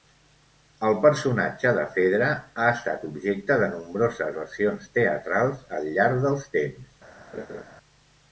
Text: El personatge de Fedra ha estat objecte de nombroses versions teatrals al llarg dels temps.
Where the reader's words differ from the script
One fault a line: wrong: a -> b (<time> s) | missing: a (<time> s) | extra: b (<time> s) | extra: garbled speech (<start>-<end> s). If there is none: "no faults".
no faults